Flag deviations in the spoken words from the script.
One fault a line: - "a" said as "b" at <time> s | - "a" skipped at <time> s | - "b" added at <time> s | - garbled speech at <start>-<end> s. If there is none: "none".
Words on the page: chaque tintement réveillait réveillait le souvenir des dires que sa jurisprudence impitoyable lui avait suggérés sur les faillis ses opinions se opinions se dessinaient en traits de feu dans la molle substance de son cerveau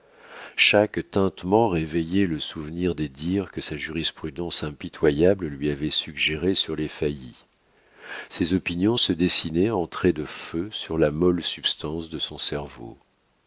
- "réveillait" skipped at 2.2 s
- "opinions se" skipped at 9.1 s
- "dans" said as "sur" at 10.7 s